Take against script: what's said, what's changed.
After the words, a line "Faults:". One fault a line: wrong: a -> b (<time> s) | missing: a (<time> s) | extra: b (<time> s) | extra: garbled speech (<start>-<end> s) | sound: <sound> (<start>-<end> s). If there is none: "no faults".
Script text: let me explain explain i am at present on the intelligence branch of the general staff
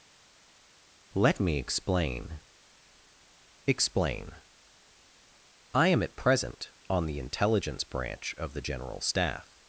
let me explain explain i am at present on the intelligence branch of the general staff
Faults:
no faults